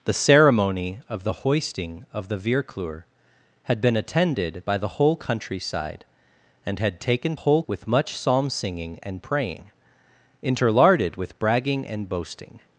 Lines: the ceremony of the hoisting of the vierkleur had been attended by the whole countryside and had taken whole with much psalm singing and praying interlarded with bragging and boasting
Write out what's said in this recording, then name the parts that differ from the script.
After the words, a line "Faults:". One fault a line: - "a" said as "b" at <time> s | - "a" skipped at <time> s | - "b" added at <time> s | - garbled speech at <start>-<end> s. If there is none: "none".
the ceremony of the hoisting of the vierkleur had been attended by the whole countryside and had taken whole with much psalm singing and praying interlarded with bragging and boasting
Faults:
none